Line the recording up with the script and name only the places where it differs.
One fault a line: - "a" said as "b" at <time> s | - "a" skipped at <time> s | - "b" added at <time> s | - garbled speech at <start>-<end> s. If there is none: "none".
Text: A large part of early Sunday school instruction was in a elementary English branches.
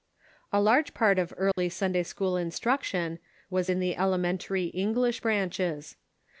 - "a" said as "the" at 3.8 s